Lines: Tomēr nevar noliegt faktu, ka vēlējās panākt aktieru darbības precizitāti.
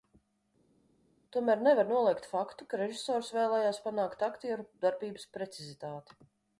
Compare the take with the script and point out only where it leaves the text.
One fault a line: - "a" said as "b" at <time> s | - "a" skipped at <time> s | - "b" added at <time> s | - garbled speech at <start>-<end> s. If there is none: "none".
- "režisors" added at 2.8 s